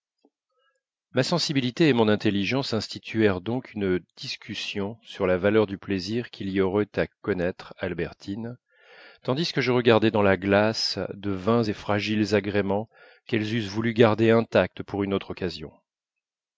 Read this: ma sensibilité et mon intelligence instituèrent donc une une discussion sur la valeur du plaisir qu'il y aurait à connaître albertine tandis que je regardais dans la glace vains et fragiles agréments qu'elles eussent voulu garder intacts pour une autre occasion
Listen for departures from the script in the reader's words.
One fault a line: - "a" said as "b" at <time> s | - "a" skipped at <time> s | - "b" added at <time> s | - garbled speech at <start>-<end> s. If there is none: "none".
- "une" skipped at 4.0 s
- "de" added at 11.1 s